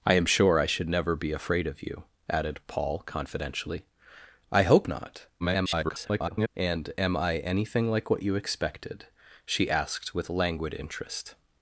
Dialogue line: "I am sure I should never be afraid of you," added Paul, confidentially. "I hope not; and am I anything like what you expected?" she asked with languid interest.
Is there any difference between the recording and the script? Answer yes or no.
yes